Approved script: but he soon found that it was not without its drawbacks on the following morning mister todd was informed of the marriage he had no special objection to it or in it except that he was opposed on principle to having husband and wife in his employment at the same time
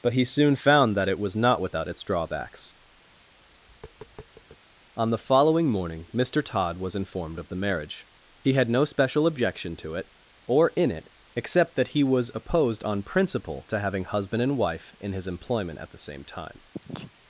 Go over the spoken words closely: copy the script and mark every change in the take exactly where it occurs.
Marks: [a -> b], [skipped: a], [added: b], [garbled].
but he soon found that it was not without its drawbacks on the following morning mister todd was informed of the marriage he had no special objection to it or in it except that he was opposed on principle to having husband and wife in his employment at the same time